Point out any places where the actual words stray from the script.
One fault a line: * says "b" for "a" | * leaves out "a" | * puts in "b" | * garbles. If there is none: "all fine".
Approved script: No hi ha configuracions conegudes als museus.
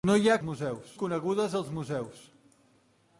* says "museus" for "configuracions"